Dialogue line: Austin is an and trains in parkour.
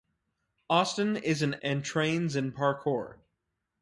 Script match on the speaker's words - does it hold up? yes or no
yes